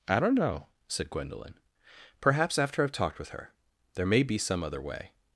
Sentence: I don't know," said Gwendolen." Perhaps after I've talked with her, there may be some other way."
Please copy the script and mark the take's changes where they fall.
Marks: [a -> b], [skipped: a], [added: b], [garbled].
I don't know," said Gwendolen." Perhaps after I've talked with her, there may be some other way."